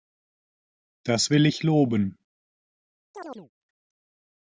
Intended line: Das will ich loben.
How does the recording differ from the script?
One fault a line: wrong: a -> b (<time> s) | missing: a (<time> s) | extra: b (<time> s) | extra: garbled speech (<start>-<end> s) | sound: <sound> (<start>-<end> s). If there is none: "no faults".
sound: chirp (3.1-3.5 s)